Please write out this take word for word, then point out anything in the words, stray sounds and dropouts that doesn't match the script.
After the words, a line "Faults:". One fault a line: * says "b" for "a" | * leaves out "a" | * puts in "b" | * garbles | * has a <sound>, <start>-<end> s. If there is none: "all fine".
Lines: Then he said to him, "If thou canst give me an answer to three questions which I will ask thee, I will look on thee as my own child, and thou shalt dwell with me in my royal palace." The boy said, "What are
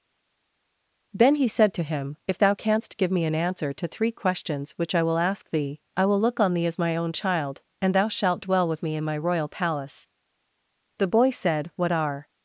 Then he said to him, "If thou canst give me an answer to three questions which I will ask thee, I will look on thee as my own child, and thou shalt dwell with me in my royal palace." The boy said, "What are
Faults:
all fine